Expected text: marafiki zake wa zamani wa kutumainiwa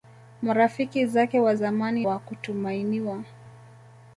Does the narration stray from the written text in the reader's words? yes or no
no